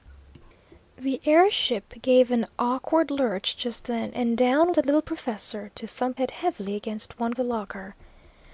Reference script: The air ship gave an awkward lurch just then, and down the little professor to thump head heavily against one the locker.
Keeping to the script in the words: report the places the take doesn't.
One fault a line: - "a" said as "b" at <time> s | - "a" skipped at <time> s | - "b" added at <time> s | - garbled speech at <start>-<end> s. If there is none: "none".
none